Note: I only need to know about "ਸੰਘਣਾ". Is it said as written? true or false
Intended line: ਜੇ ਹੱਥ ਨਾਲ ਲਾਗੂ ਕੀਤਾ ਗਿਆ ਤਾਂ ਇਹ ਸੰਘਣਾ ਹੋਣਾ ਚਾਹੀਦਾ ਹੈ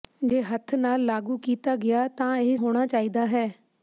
false